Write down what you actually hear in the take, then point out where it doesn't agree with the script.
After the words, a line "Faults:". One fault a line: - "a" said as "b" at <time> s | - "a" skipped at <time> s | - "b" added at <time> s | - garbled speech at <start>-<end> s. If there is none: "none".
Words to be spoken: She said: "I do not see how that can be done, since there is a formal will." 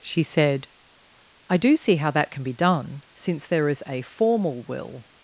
She said: "I do see how that can be done, since there is a formal will."
Faults:
- "not" skipped at 1.8 s